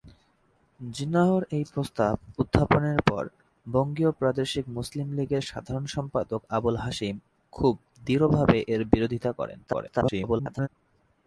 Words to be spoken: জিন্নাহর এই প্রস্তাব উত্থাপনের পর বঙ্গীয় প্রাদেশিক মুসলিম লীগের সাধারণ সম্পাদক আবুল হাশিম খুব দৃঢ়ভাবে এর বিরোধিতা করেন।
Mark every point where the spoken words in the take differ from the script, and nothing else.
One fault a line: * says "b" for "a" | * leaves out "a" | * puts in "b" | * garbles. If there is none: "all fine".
* garbles